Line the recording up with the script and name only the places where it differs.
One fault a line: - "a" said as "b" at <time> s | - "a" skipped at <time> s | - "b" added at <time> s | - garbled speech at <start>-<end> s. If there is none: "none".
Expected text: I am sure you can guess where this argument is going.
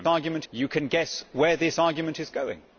- "sure" said as "argument" at 0.0 s